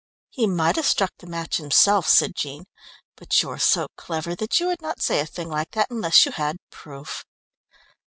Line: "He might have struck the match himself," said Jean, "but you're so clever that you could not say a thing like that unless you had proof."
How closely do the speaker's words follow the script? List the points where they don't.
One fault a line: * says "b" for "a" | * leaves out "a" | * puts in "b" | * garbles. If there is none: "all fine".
* says "would" for "could"